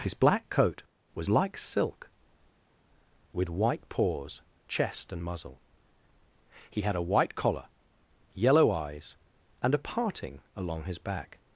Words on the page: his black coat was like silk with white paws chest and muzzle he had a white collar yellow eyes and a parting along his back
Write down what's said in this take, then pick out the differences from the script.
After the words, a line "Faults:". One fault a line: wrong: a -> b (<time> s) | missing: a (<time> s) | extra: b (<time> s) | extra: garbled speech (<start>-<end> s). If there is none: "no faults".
his black coat was like silk with white paws chest and muzzle he had a white collar yellow eyes and a parting along his back
Faults:
no faults